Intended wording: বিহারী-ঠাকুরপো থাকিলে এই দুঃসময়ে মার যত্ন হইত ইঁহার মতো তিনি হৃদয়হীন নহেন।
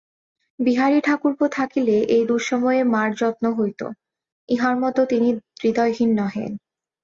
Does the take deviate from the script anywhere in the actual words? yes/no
no